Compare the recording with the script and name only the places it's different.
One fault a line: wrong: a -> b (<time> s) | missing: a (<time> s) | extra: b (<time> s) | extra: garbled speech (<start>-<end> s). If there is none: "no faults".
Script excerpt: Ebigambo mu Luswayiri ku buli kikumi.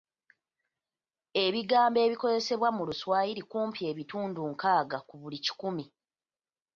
extra: ebikozesebwa (2.0 s)
extra: kumpi ebitundu nkaaga (3.5 s)